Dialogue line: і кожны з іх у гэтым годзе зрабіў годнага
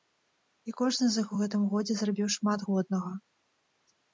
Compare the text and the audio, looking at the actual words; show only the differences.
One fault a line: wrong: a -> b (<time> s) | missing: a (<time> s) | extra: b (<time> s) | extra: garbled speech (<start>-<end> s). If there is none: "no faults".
extra: шмат (2.4 s)